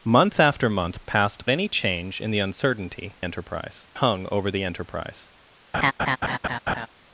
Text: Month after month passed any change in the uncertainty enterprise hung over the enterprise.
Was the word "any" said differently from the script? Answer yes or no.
no